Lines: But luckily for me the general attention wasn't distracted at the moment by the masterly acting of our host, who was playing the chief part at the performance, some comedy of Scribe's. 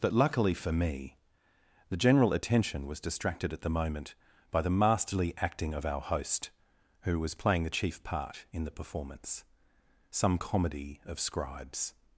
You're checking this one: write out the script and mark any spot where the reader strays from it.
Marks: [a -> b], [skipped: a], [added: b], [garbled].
But luckily for me the general attention [wasn't -> was] distracted at the moment by the masterly acting of our host, who was playing the chief part [at -> in] the performance, some comedy of Scribe's.